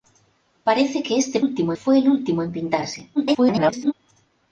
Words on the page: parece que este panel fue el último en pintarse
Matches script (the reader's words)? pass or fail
fail